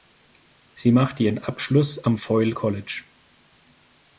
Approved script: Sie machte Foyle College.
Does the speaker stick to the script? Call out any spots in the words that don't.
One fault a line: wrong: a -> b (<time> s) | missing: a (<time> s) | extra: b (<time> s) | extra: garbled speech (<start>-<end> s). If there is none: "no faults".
extra: ihren Abschluss am (1.2 s)